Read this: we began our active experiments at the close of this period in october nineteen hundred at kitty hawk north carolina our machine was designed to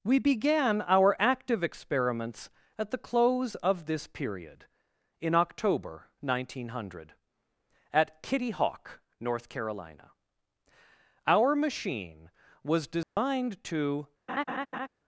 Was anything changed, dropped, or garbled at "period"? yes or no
no